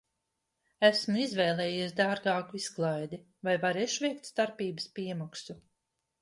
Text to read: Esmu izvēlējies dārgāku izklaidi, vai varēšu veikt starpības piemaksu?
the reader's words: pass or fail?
pass